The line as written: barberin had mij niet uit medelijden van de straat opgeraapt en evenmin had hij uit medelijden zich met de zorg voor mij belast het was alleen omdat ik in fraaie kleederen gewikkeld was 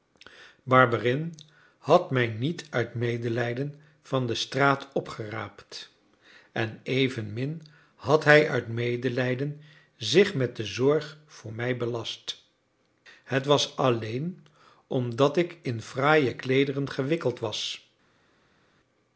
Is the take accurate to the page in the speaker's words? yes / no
yes